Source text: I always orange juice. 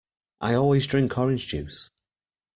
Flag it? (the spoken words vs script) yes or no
yes